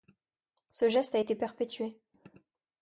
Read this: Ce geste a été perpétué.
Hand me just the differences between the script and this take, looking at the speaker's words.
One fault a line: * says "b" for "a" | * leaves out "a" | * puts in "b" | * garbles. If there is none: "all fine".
all fine